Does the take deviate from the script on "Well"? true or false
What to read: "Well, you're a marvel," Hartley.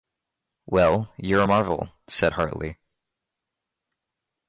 false